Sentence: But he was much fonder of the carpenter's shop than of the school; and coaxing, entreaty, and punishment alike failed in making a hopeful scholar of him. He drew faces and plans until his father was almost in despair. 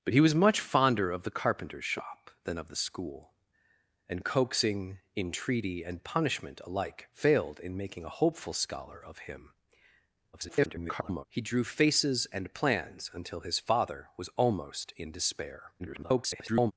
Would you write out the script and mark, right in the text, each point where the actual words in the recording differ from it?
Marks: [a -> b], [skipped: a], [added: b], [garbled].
But he was much fonder of the carpenter's shop than of the school; and coaxing, entreaty, and punishment alike failed in making a hopeful scholar of him. [garbled] He drew faces and plans until his father was almost in despair. [garbled]